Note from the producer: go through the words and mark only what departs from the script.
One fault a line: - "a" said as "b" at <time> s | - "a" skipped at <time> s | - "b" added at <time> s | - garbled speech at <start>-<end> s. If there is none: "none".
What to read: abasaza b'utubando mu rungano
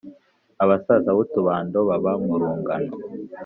- "baba" added at 1.9 s